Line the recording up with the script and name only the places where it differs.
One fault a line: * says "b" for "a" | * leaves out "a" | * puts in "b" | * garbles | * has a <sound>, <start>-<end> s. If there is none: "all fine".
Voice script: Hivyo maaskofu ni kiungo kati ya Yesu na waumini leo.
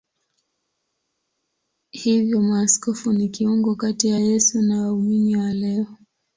* puts in "wa"